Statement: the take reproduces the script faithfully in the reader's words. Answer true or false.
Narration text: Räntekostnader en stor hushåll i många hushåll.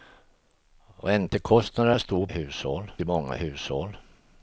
true